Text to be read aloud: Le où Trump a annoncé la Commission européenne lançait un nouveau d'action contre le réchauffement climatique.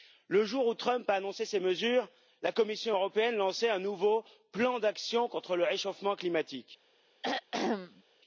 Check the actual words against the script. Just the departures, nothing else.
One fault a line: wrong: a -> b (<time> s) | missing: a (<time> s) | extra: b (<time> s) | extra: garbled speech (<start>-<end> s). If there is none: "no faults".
extra: jour (0.5 s)
extra: ces mesures (1.4 s)
extra: plan (4.5 s)